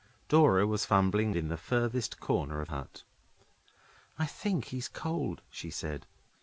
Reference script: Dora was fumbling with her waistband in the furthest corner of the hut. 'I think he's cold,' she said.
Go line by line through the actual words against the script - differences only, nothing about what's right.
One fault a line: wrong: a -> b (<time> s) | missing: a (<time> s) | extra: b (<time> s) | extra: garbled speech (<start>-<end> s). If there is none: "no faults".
missing: with her waistband (1.3 s)
missing: the (2.7 s)